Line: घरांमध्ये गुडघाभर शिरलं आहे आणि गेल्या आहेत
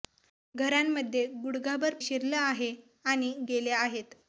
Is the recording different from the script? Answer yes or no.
no